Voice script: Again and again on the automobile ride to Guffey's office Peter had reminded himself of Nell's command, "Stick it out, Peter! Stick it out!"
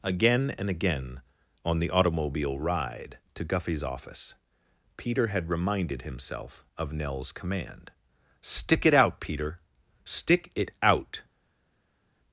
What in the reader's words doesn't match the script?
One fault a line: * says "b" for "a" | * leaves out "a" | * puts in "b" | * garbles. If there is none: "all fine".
all fine